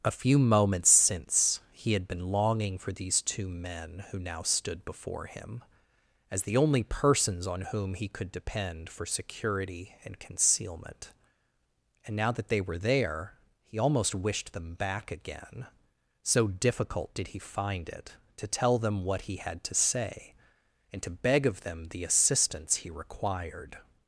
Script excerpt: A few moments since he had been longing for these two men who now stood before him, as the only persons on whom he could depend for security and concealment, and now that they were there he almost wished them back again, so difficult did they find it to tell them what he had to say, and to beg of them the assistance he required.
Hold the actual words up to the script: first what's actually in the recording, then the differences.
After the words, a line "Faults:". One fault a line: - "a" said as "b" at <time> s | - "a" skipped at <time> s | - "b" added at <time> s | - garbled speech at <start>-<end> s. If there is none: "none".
A few moments since he had been longing for these two men who now stood before him, as the only persons on whom he could depend for security and concealment, and now that they were there he almost wished them back again, so difficult did he find it to tell them what he had to say, and to beg of them the assistance he required.
Faults:
- "they" said as "he" at 17.3 s